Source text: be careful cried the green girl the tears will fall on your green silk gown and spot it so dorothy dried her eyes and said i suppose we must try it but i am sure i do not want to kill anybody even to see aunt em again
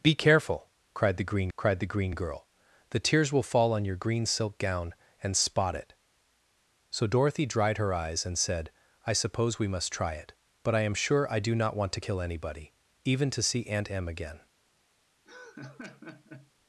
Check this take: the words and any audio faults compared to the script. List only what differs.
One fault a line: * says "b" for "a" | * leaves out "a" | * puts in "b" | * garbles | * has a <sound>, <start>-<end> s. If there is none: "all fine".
* puts in "cried the green"
* has a laugh, 15.3-16.5 s